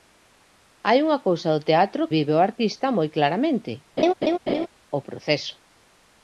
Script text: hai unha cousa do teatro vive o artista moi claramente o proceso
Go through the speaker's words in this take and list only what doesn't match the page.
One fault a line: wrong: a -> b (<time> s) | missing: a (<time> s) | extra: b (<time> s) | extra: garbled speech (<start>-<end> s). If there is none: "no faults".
no faults